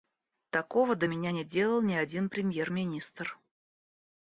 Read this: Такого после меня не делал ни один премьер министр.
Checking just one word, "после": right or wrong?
wrong